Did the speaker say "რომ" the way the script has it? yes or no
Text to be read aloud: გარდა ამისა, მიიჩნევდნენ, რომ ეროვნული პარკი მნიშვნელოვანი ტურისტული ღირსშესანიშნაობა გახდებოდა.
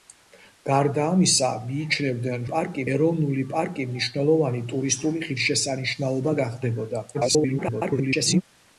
no